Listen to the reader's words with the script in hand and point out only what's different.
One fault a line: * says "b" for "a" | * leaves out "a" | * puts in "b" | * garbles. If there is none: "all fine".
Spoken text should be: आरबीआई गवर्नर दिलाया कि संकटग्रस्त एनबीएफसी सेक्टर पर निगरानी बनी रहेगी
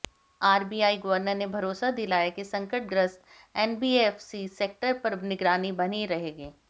* puts in "ने भरोसा"